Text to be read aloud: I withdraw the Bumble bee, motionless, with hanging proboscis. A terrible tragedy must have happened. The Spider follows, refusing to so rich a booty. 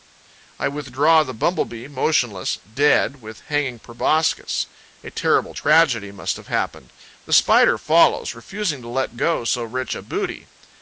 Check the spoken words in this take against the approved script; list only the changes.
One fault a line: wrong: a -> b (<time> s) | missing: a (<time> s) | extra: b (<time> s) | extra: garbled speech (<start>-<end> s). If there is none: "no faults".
extra: dead (2.5 s)
extra: let go (8.9 s)